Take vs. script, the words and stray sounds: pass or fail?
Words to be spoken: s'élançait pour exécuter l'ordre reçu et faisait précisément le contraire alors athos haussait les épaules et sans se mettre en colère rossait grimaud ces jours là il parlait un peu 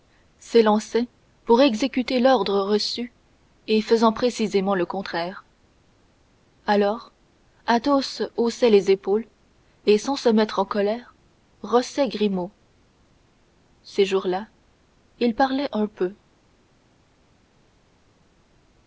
pass